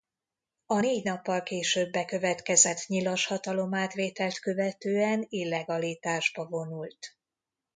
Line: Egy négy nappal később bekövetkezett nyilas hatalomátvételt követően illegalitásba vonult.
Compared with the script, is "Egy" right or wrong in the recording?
wrong